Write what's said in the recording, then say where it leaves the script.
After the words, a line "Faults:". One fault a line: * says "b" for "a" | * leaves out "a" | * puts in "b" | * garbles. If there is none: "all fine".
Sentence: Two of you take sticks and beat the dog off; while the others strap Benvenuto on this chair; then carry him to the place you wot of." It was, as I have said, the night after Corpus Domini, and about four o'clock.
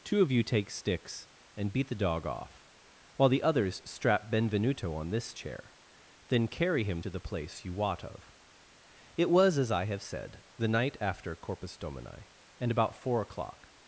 Two of you take sticks and beat the dog off; while the others strap Benvenuto on this chair; then carry him to the place you wot of." It was, as I have said, the night after Corpus Domini, and about four o'clock.
Faults:
all fine